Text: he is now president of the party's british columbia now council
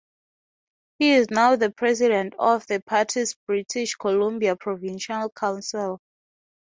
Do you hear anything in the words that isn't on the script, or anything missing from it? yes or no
yes